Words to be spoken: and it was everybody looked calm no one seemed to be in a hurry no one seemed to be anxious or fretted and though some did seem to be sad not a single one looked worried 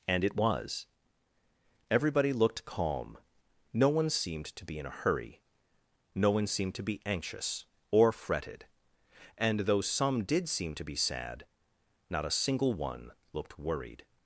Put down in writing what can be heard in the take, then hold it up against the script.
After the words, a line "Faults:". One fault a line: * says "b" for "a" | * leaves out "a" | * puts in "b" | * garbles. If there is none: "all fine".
and it was everybody looked calm no one seemed to be in a hurry no one seemed to be anxious or fretted and though some did seem to be sad not a single one looked worried
Faults:
all fine